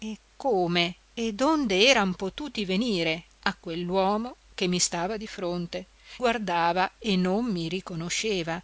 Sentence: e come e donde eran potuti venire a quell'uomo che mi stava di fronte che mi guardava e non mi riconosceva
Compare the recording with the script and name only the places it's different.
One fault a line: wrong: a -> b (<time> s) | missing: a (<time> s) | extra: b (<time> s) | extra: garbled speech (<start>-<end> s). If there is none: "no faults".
missing: che mi (5.9 s)